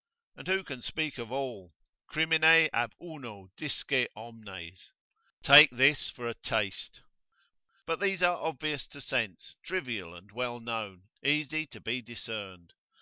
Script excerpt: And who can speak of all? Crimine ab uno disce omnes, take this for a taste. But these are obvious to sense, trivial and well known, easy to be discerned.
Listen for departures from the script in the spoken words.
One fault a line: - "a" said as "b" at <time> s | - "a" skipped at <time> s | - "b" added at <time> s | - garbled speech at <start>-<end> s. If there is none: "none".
none